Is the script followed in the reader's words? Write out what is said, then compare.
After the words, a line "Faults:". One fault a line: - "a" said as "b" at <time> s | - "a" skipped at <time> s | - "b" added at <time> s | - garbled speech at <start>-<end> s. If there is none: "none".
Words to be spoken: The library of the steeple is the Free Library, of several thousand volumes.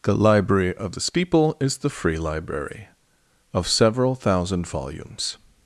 The library of the steeple is the Free Library, of several thousand volumes.
Faults:
none